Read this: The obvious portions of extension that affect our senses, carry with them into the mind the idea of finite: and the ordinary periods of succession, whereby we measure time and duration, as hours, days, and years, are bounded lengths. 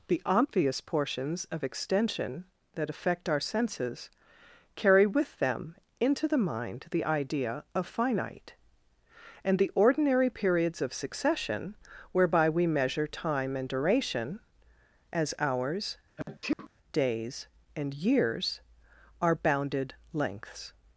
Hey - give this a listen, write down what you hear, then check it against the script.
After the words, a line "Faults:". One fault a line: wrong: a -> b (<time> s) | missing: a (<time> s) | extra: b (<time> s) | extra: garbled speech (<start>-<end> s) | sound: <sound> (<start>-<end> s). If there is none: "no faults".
The obvious portions of extension that affect our senses, carry with them into the mind the idea of finite: and the ordinary periods of succession, whereby we measure time and duration, as hours, days, and years, are bounded lengths.
Faults:
sound: sneeze (16.2-16.7 s)